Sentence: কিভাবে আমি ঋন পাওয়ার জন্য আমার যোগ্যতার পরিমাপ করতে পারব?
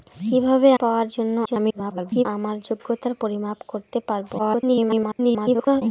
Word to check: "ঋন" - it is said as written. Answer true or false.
false